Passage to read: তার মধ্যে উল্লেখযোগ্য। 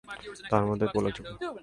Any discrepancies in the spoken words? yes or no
no